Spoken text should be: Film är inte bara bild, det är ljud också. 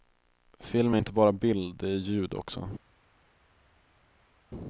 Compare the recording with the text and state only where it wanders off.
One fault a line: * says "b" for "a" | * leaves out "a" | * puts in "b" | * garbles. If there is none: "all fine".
all fine